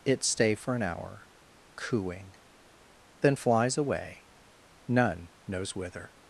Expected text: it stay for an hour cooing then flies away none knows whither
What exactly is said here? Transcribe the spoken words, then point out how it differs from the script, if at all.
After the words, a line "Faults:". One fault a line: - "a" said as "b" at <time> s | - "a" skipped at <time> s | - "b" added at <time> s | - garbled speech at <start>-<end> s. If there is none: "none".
it stay for an hour cooing then flies away none knows whither
Faults:
none